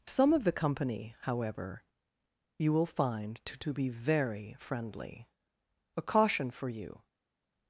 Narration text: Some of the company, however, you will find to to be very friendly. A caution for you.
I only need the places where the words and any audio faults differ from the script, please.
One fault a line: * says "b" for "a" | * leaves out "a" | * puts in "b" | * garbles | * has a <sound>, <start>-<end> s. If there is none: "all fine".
all fine